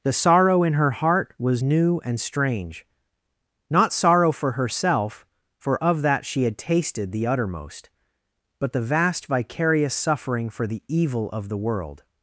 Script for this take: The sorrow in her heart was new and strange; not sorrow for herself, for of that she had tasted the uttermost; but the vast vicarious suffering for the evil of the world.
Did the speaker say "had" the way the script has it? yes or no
yes